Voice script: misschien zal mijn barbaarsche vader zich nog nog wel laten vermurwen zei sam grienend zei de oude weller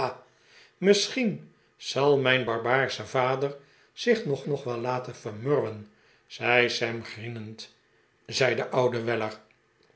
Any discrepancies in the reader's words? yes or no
no